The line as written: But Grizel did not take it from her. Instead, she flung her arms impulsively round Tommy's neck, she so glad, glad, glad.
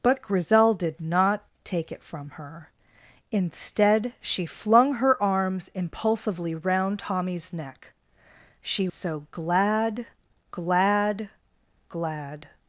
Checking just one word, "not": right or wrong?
right